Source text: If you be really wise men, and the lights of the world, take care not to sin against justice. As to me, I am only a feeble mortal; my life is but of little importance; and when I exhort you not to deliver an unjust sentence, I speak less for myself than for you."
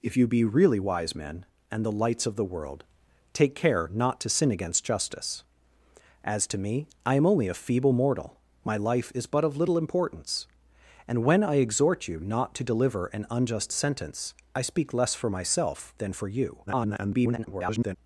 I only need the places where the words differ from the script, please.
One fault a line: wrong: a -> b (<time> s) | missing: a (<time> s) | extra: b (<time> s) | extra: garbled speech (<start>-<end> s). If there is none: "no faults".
extra: garbled speech (16.7-18.0 s)